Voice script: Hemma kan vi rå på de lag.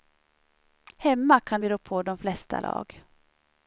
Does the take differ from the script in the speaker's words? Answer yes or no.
yes